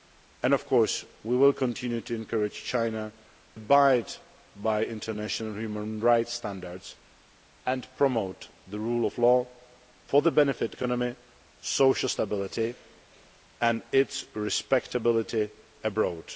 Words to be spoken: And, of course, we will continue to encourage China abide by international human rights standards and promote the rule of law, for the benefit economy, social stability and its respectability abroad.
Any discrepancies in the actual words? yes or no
no